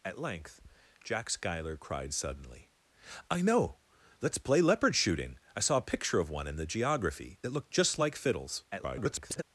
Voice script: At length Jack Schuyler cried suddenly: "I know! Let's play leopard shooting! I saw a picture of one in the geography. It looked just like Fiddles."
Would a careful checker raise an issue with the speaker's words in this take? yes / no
yes